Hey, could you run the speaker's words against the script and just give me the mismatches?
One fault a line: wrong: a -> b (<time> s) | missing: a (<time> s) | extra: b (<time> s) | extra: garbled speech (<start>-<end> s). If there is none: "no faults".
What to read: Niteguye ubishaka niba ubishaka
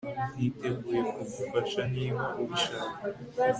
wrong: ubishaka -> kugufasha (1.1 s)